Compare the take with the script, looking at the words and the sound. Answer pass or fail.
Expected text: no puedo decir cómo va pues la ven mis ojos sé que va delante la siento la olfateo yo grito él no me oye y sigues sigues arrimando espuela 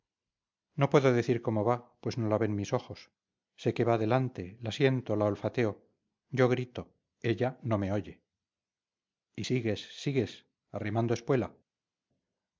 fail